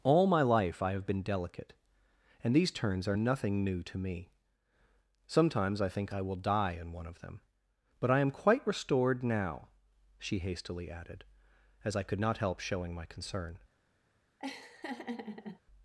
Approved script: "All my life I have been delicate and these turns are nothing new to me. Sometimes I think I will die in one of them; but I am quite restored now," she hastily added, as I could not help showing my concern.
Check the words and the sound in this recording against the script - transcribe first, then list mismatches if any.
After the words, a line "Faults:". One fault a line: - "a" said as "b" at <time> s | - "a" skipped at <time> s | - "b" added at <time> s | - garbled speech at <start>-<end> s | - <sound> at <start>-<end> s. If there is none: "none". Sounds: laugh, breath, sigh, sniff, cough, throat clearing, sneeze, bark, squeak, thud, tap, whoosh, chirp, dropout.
"All my life I have been delicate and these turns are nothing new to me. Sometimes I think I will die in one of them; but I am quite restored now," she hastily added, as I could not help showing my concern.
Faults:
- laugh at 14.4-15.6 s